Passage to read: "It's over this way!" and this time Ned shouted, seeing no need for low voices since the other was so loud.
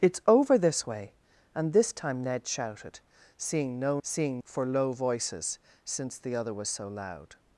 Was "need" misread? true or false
true